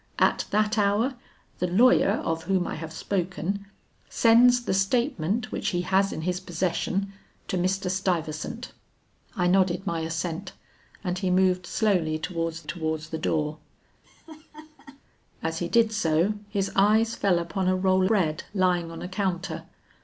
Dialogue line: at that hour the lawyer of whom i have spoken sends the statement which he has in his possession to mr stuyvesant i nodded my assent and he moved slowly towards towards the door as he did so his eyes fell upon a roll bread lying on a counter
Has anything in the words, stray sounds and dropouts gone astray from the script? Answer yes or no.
yes